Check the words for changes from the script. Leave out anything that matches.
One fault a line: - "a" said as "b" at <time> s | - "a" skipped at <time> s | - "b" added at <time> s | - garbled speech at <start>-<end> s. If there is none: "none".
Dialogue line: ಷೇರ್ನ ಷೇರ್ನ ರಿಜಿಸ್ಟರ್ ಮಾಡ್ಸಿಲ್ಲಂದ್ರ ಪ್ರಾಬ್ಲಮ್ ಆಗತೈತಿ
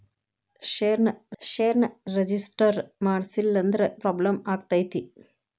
none